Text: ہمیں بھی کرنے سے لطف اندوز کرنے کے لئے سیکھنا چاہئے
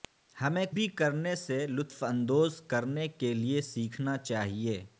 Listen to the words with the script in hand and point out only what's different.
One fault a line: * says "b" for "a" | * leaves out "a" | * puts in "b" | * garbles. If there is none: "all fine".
all fine